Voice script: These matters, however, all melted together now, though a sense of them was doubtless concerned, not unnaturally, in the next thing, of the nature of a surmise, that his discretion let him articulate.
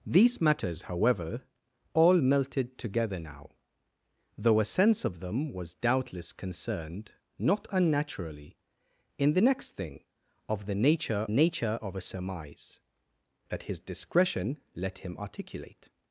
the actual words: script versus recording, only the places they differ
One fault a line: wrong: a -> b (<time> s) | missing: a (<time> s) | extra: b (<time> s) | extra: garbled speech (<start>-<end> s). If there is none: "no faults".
extra: nature (11.3 s)